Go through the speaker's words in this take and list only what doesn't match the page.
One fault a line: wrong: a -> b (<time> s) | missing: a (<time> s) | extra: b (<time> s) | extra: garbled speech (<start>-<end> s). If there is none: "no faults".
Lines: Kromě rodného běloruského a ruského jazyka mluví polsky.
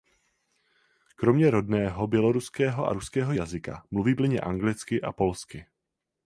extra: plynně anglicky a (4.1 s)